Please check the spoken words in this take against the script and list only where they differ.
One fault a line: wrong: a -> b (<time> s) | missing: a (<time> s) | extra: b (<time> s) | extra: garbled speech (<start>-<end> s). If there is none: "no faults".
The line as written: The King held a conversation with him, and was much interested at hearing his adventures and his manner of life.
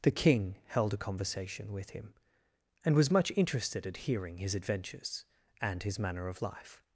no faults